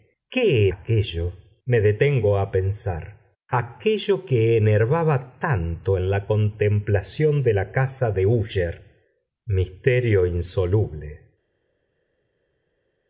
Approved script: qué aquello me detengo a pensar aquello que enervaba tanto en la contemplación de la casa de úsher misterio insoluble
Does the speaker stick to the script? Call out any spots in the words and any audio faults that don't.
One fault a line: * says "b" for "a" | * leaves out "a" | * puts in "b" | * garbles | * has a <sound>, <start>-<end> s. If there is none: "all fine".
all fine